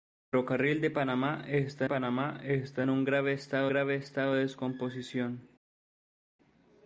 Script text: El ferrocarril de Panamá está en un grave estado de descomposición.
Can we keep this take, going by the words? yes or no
no